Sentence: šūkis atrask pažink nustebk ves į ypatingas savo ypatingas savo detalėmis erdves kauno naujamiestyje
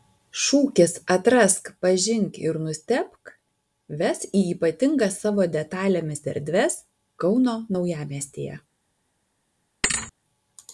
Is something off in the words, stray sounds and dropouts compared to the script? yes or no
yes